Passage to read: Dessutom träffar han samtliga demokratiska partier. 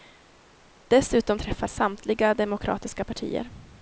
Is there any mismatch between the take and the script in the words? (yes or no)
yes